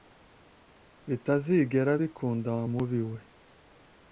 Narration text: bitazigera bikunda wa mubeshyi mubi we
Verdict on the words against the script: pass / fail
fail